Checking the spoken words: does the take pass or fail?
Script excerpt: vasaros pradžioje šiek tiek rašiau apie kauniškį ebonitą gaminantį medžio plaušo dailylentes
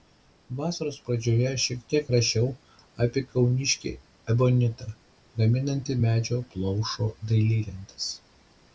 pass